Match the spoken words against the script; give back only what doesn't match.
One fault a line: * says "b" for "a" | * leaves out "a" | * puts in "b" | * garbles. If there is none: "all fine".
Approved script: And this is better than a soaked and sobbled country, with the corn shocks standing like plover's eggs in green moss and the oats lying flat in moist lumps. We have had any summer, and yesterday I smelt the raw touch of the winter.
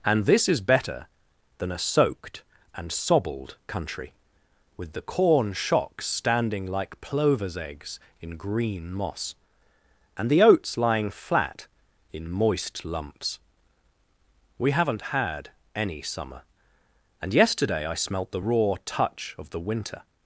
* says "haven't" for "have"